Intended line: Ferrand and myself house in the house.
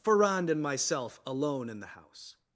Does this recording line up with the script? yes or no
no